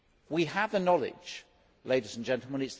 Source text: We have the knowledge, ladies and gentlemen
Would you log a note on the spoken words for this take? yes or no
no